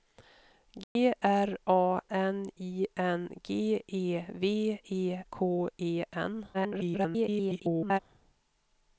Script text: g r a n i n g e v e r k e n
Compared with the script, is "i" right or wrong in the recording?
right